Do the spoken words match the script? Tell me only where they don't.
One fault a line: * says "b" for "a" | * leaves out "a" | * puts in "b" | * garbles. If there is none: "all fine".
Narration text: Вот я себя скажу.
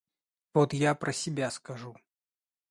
* puts in "про"